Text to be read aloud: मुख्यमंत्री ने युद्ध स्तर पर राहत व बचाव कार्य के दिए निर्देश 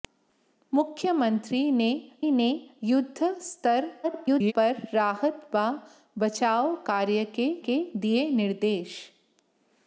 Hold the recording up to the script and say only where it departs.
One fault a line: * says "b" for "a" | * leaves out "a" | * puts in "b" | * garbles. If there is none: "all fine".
* puts in "ने"
* garbles
* puts in "के"